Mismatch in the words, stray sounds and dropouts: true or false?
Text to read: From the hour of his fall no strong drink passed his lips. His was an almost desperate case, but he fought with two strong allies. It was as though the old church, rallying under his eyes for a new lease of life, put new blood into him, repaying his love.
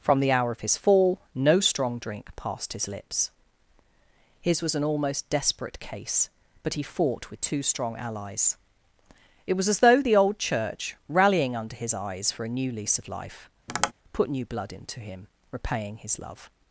true